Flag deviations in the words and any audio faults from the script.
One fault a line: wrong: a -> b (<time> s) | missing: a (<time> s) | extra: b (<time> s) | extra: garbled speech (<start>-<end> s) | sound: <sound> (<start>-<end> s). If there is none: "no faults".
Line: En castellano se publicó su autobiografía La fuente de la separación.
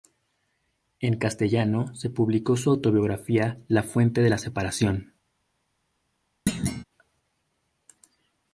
sound: thud (6.5-6.8 s)